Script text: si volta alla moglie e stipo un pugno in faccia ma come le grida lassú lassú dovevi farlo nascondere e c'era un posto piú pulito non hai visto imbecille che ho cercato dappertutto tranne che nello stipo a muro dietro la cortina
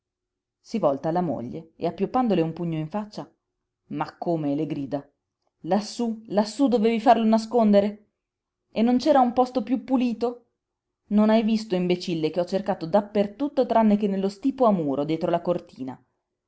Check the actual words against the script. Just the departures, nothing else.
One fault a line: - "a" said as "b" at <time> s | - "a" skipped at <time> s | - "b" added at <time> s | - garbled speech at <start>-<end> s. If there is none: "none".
- "stipo" said as "appioppandole" at 1.9 s
- "non" added at 8.8 s